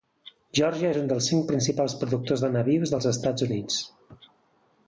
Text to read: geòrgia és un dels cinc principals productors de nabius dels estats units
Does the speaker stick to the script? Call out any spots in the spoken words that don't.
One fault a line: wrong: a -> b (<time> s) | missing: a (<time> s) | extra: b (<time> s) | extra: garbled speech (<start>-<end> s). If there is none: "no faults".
no faults